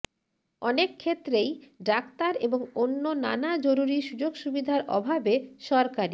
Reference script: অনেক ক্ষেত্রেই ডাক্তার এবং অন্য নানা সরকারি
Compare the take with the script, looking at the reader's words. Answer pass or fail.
fail